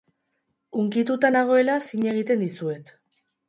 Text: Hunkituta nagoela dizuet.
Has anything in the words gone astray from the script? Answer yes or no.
yes